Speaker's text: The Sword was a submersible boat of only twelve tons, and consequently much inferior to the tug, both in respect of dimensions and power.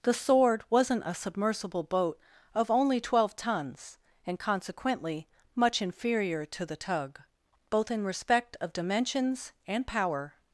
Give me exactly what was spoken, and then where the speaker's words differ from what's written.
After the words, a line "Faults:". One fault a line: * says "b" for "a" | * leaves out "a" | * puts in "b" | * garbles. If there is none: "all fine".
The Sword wasn't a submersible boat of only twelve tons, and consequently much inferior to the tug, both in respect of dimensions and power.
Faults:
* says "wasn't" for "was"